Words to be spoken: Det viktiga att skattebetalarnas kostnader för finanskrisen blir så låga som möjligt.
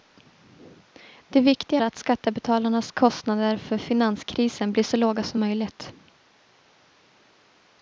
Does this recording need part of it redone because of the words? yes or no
no